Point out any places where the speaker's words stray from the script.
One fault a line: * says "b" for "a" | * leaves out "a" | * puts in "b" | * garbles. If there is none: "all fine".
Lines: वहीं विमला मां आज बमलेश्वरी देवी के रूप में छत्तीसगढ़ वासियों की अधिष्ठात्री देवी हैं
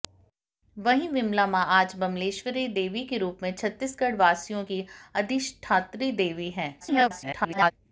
* garbles